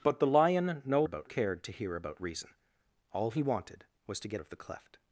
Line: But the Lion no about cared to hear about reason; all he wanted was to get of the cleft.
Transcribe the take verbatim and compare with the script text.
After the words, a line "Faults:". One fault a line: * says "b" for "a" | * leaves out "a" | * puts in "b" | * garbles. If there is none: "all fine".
But the Lion no about cared to hear about reason; all he wanted was to get of the cleft.
Faults:
all fine